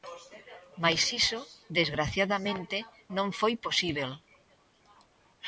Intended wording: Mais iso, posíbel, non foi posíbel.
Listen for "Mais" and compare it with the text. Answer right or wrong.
right